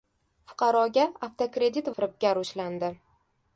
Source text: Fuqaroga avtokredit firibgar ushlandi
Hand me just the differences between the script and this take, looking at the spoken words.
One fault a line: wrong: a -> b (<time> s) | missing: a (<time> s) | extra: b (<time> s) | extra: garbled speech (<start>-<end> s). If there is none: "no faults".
no faults